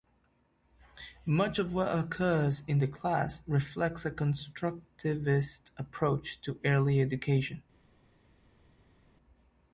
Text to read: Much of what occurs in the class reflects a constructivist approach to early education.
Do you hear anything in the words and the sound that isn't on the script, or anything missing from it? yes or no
no